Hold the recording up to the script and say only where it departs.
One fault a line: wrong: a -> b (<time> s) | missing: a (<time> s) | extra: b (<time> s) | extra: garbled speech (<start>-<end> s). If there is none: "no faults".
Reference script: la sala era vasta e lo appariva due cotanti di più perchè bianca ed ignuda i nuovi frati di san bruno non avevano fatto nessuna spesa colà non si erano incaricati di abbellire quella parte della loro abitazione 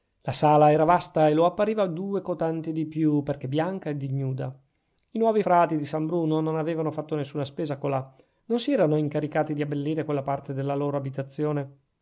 no faults